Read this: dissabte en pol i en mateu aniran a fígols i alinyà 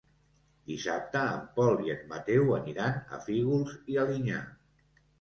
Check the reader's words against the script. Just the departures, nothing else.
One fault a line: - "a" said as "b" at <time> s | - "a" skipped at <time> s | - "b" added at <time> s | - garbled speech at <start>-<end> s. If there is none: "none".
none